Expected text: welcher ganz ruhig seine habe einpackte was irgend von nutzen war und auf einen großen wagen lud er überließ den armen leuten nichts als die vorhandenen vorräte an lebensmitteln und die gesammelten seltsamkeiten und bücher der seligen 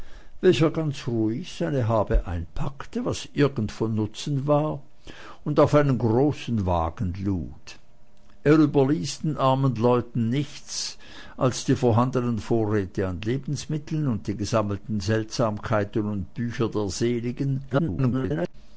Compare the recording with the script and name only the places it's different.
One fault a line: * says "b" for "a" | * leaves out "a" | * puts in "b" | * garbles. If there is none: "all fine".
* garbles